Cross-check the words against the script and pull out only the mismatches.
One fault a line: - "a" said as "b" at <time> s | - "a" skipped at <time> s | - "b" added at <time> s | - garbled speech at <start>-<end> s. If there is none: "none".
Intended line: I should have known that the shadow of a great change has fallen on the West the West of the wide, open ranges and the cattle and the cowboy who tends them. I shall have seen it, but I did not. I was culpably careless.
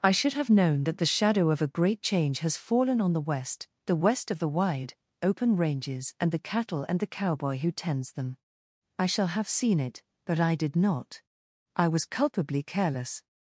none